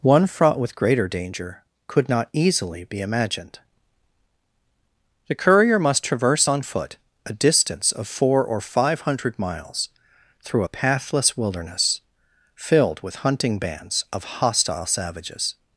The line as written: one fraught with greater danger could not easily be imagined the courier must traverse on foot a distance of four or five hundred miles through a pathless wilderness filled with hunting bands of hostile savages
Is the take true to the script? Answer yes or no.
yes